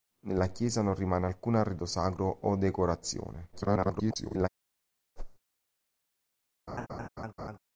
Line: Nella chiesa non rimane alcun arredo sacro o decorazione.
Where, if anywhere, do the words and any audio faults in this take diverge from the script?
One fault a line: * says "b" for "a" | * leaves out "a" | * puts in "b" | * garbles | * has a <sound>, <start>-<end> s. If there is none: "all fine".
* garbles
* has a whoosh, 5.2-5.4 s
* has a laugh, 6.7-7.6 s